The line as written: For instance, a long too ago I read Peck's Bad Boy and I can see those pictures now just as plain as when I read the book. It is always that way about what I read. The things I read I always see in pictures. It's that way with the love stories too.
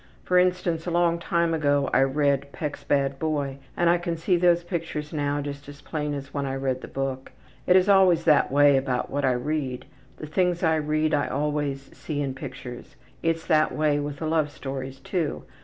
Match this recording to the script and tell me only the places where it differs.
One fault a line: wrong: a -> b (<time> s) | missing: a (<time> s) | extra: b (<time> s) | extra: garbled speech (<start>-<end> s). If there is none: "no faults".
wrong: too -> time (1.2 s)